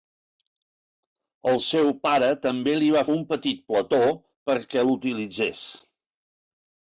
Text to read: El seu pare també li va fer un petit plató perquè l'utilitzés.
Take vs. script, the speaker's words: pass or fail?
fail